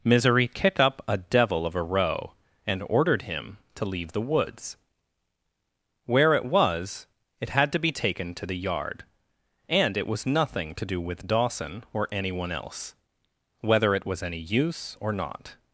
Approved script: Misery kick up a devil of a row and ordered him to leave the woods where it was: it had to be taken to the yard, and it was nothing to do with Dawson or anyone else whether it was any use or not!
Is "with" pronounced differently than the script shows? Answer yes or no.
no